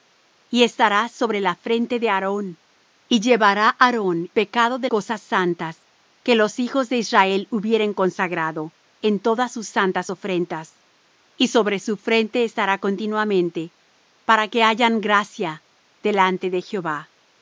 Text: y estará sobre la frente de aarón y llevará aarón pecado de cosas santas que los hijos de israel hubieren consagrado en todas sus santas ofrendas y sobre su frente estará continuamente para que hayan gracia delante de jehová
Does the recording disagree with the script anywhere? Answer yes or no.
no